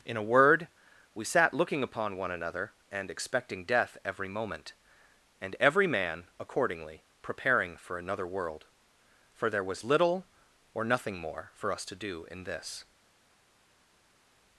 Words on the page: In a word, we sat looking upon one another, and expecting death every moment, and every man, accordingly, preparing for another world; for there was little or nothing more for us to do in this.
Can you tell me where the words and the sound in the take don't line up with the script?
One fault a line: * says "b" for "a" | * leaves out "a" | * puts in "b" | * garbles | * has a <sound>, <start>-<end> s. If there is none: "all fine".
all fine